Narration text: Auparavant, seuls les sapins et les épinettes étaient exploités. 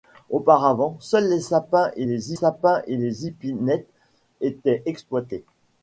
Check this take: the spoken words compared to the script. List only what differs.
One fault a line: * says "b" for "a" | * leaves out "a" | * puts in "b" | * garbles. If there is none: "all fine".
* puts in "sapins et les"